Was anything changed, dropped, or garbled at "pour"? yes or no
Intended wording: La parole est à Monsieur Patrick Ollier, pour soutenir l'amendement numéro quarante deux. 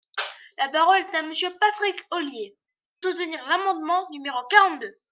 yes